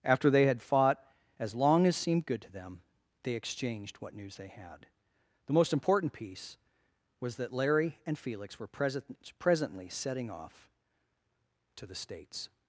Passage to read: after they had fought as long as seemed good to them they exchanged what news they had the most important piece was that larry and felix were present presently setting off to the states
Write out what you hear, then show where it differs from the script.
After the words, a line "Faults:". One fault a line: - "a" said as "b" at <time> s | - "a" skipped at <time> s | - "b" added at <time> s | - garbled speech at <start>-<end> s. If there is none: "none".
after they had fought as long as seemed good to them they exchanged what news they had the most important piece was that larry and felix were present presently setting off to the states
Faults:
none